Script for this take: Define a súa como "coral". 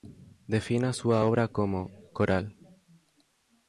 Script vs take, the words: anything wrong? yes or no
yes